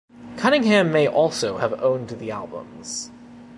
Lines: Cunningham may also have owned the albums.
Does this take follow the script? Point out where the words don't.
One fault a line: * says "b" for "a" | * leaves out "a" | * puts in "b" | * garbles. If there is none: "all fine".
all fine